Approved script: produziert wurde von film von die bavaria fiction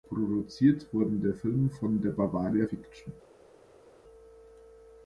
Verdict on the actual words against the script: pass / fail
fail